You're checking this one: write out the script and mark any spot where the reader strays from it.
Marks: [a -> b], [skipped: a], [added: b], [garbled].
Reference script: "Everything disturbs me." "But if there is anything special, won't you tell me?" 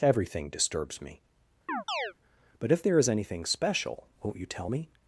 "Everything disturbs me." "But if there is anything special, won't you tell me?"